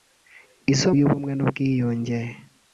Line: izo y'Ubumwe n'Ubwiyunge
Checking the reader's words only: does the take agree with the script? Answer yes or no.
yes